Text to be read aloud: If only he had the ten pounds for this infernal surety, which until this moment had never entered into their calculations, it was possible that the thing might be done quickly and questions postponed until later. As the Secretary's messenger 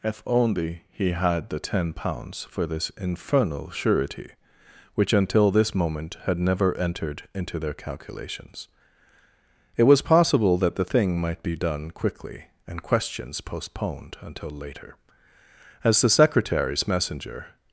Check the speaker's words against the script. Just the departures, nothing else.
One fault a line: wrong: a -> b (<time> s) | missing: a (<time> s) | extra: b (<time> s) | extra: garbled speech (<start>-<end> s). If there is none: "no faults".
no faults